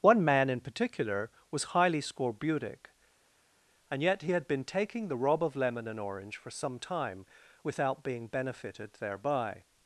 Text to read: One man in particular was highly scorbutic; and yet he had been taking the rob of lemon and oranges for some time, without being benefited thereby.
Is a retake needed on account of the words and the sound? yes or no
yes